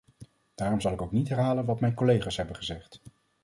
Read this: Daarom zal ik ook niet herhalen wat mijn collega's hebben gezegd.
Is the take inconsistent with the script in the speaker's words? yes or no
no